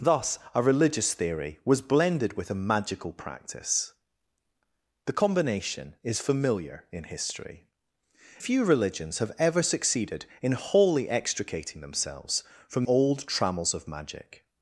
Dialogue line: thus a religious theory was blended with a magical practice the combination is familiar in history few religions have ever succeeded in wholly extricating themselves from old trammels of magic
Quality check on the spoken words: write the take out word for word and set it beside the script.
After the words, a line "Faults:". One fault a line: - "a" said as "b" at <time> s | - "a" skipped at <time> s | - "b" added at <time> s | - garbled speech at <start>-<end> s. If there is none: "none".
thus a religious theory was blended with a magical practice the combination is familiar in history few religions have ever succeeded in wholly extricating themselves from old trammels of magic
Faults:
none